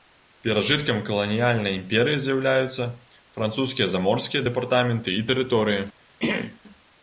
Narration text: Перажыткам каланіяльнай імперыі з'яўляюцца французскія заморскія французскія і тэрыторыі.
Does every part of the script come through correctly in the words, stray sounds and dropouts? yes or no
no